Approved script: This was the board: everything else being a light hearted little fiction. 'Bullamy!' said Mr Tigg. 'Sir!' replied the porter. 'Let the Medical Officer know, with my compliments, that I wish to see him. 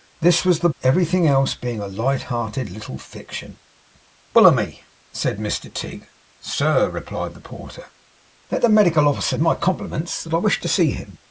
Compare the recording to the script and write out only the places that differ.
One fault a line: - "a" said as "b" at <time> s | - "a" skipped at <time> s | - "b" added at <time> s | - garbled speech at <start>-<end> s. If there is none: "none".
- "board" skipped at 0.7 s
- "know with" skipped at 9.4 s